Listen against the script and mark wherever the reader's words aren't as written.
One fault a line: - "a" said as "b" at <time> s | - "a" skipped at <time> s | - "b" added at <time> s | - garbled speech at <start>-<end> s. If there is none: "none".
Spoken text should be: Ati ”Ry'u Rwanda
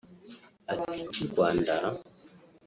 none